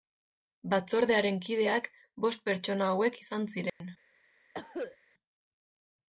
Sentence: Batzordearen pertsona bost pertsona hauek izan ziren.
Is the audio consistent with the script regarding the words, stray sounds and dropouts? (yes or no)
no